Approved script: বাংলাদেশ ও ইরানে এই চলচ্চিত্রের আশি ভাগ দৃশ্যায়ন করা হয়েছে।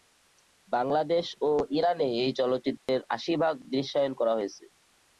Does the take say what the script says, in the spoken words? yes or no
yes